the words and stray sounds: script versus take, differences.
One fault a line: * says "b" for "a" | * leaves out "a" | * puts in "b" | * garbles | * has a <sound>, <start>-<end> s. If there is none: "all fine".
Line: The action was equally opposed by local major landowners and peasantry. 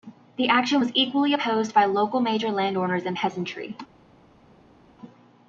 all fine